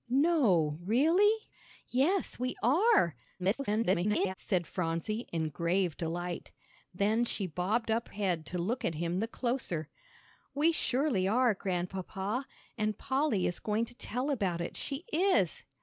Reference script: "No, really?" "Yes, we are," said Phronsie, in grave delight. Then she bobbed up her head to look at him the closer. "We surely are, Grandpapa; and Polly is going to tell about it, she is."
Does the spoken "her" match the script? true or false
false